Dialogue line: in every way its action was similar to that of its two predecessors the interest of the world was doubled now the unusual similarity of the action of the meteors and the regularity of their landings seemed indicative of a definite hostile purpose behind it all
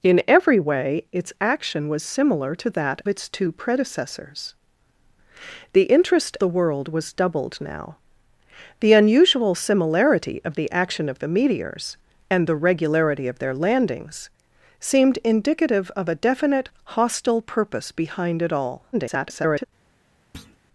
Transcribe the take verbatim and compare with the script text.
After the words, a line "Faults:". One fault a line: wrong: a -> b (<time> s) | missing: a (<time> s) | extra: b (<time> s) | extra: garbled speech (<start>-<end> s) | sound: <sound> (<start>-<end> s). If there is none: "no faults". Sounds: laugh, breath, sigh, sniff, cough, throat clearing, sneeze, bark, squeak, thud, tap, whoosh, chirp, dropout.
in every way its action was similar to that its two predecessors the interest the world was doubled now the unusual similarity of the action of the meteors and the regularity of their landings seemed indicative of a definite hostile purpose behind it all [garbled]
Faults:
missing: of (3.0 s)
missing: of (6.4 s)
extra: garbled speech (18.9-19.6 s)
sound: thud (20.3-20.6 s)